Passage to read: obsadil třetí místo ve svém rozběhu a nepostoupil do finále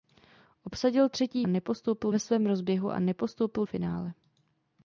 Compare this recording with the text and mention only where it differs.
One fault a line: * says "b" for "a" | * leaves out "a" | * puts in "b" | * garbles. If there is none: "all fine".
* says "nepostoupil" for "místo"
* leaves out "do"